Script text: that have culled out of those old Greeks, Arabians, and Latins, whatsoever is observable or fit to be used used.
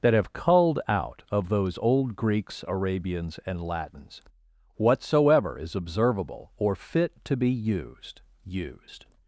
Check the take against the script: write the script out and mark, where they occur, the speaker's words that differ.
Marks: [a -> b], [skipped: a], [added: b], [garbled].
that have culled out of those old Greeks, Arabians, and Latins, whatsoever is observable or fit to be used used.